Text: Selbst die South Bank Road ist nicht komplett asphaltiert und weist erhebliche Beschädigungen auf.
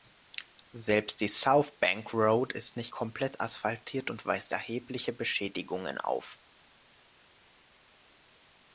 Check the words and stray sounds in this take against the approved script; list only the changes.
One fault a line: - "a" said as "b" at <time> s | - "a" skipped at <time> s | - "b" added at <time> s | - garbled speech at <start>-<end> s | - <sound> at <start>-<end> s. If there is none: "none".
none